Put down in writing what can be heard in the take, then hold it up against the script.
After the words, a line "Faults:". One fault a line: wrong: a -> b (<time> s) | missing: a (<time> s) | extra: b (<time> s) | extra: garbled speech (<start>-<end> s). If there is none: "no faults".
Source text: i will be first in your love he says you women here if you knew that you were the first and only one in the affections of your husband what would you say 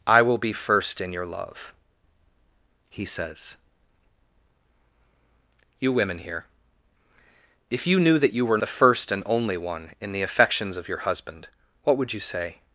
i will be first in your love he says you women here if you knew that you were the first and only one in the affections of your husband what would you say
Faults:
no faults